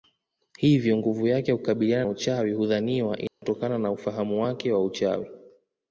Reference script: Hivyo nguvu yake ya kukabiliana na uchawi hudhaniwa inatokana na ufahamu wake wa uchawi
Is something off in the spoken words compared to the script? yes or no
yes